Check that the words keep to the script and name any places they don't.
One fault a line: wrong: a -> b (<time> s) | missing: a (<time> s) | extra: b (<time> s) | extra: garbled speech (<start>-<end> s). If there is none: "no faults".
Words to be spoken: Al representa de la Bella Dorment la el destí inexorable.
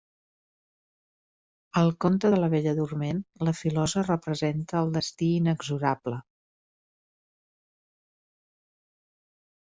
wrong: representa -> conte (2.0 s)
extra: filosa representa (3.6 s)